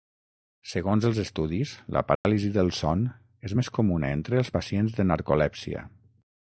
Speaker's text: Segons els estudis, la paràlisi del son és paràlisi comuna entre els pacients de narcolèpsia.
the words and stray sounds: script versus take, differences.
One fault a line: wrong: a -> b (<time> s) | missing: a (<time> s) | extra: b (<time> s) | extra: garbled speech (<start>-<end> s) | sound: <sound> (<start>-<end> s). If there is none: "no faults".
sound: dropout (2.2-2.2 s)
wrong: paràlisi -> més (3.6 s)